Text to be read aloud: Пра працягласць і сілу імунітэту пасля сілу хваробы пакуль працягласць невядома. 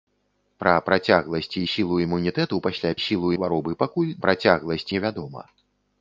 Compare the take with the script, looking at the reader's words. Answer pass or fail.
pass